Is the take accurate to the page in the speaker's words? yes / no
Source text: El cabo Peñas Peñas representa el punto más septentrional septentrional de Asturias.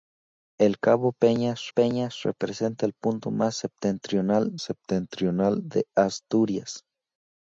yes